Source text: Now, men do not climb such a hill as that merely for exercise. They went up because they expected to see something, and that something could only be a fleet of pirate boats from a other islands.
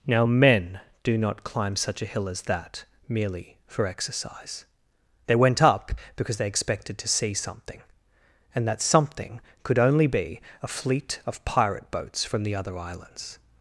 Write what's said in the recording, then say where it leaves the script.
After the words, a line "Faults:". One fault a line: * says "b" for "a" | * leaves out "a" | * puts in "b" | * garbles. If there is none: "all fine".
Now, men do not climb such a hill as that merely for exercise. They went up because they expected to see something, and that something could only be a fleet of pirate boats from the other islands.
Faults:
* says "the" for "a"